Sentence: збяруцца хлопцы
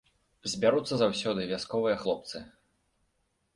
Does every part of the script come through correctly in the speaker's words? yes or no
no